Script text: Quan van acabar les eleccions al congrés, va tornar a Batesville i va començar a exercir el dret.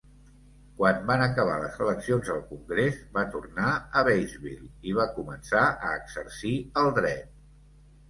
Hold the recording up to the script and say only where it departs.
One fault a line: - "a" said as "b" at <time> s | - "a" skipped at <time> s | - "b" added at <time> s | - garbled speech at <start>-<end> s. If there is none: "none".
none